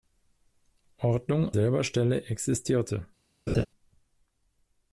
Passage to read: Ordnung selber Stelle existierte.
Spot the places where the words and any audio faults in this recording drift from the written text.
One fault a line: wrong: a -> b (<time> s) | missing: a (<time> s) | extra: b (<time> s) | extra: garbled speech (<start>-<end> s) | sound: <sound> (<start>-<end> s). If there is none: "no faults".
sound: laugh (3.5-3.7 s)